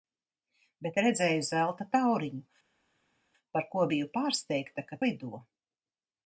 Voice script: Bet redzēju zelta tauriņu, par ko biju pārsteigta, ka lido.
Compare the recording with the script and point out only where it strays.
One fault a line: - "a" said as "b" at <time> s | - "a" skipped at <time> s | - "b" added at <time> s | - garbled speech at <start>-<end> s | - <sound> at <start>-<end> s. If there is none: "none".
none